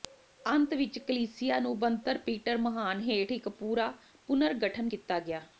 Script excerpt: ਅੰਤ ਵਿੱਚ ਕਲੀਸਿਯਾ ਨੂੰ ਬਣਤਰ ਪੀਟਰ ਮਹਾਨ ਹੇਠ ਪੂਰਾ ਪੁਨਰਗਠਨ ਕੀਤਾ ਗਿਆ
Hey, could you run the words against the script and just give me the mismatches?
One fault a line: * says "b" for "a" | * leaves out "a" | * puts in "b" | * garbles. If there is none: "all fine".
* puts in "ਇੱਕ"